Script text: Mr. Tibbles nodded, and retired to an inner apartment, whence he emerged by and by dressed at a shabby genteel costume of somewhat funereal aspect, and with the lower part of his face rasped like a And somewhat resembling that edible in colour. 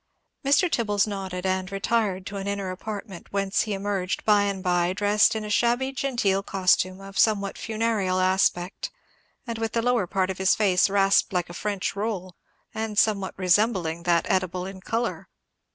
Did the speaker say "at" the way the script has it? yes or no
no